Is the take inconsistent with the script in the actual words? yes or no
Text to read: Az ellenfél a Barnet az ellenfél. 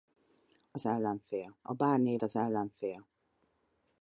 no